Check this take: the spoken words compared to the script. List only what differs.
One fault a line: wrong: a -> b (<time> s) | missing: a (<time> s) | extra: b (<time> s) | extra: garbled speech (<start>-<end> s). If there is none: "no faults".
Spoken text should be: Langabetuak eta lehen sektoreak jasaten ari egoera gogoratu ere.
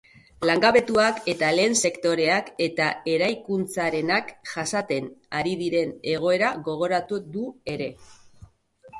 extra: eta eraikuntzarenak (2.7 s)
extra: diren (5.6 s)
extra: du (7.3 s)